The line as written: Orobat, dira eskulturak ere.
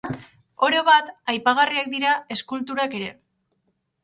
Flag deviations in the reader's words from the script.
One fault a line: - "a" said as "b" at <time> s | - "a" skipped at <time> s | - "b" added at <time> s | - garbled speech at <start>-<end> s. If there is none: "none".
- "aipagarriak" added at 1.3 s